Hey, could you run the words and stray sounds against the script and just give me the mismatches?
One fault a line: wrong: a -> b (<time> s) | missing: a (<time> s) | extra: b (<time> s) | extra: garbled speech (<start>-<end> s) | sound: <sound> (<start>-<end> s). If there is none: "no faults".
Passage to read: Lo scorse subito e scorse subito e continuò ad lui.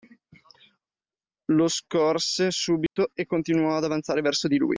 sound: dropout (2.9-3.0 s)
wrong: scorse subito e continuò ad -> continuò ad avanzare verso di (3.2 s)